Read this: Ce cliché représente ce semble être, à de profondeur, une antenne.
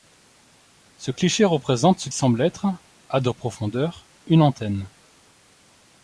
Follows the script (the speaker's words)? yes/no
yes